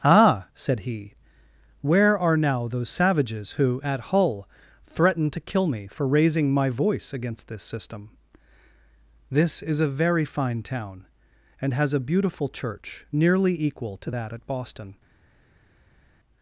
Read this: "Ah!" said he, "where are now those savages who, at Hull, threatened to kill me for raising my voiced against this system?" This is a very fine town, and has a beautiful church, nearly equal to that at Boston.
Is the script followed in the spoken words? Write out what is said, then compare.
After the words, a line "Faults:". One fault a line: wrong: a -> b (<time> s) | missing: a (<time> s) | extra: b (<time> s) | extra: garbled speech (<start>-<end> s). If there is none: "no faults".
"Ah!" said he, "where are now those savages who, at Hull, threatened to kill me for raising my voice against this system?" This is a very fine town, and has a beautiful church, nearly equal to that at Boston.
Faults:
wrong: voiced -> voice (6.7 s)